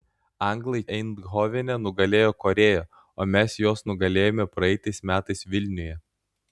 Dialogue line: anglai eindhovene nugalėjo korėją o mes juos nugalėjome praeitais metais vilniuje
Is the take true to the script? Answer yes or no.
yes